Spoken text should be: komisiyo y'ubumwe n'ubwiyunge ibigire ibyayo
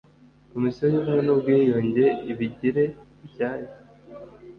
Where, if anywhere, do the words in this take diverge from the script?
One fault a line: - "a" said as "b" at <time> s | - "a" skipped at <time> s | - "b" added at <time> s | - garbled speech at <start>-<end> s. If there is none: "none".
none